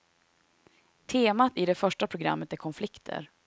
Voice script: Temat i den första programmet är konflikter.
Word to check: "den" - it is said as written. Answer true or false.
false